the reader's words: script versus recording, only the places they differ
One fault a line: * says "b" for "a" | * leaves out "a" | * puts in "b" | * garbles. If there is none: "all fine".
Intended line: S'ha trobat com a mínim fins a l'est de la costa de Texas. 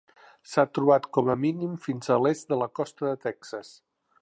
all fine